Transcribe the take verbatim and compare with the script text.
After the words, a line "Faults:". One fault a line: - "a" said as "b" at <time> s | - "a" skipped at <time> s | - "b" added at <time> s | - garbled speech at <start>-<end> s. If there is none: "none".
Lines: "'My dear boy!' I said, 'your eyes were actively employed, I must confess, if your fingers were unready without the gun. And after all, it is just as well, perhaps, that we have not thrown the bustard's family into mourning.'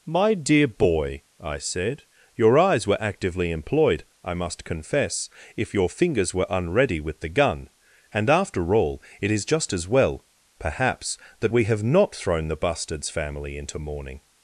"'My dear boy!' I said, 'your eyes were actively employed, I must confess, if your fingers were unready with the gun. And after all, it is just as well, perhaps, that we have not thrown the bustard's family into mourning.'
Faults:
- "without" said as "with" at 7.0 s